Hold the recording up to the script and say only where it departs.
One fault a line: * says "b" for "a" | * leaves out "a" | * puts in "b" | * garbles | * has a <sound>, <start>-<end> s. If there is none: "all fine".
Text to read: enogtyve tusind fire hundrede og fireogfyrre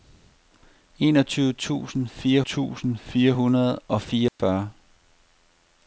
* puts in "tusind fire"
* has a dropout, 4.3-4.4 s